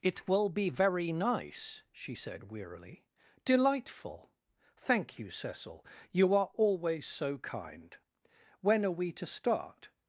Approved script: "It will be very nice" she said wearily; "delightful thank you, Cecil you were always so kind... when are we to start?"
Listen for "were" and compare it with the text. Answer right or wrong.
wrong